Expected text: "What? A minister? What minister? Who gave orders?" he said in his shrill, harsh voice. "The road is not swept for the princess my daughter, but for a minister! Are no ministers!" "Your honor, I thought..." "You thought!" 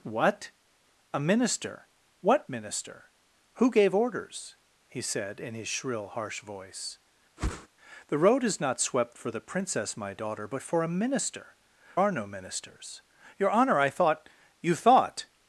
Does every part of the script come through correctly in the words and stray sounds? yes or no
no